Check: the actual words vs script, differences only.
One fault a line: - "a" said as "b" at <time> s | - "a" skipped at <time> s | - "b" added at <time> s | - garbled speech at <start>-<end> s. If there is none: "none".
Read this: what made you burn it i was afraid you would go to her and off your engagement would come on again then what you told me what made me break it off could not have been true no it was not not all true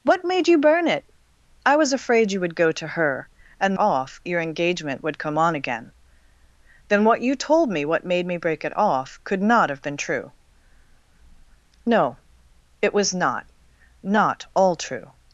none